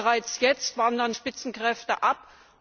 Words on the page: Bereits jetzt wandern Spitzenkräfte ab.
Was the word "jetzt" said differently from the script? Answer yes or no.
no